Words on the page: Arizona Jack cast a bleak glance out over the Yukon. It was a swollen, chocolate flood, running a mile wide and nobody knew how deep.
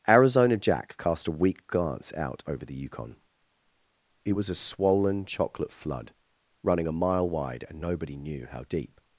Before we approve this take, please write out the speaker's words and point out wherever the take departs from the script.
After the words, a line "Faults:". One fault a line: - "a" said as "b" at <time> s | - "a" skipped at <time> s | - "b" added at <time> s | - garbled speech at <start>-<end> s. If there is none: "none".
Arizona Jack cast a weak glance out over the Yukon. It was a swollen, chocolate flood, running a mile wide and nobody knew how deep.
Faults:
- "bleak" said as "weak" at 1.3 s